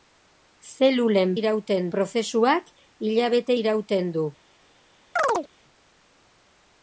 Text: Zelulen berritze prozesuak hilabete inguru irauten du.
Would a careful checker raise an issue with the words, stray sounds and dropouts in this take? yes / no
yes